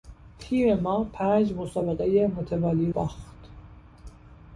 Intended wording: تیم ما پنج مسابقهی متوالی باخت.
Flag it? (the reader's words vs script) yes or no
no